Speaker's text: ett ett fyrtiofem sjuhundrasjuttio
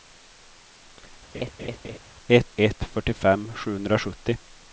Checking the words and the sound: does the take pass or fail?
fail